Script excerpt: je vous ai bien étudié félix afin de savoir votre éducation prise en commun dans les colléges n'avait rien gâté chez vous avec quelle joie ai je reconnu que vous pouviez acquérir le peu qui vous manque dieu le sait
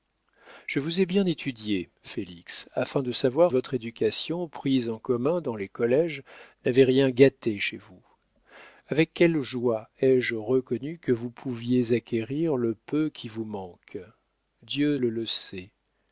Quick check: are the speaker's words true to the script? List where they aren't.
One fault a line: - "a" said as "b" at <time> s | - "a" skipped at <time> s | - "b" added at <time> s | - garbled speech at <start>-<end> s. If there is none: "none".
none